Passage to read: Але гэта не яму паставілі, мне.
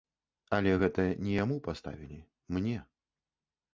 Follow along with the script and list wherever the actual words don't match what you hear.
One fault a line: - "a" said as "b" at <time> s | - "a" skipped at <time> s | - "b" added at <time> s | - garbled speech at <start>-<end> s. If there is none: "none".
none